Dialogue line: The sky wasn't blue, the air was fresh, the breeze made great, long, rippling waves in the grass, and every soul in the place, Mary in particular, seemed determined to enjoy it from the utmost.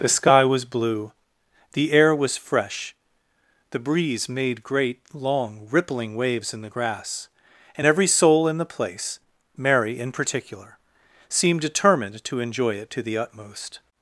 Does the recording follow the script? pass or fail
fail